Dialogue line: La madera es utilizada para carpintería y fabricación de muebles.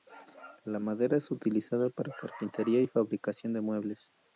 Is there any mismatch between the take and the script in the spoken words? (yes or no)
no